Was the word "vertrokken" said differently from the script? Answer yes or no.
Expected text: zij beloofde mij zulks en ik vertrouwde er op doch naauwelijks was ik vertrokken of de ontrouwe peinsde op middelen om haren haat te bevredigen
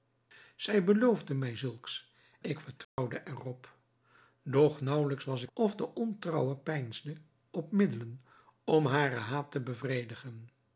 yes